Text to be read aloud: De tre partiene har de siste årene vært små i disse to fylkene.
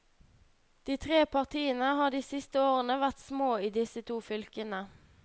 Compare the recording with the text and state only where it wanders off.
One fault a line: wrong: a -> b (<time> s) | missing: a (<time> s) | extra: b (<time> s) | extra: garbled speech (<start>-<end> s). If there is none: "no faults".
no faults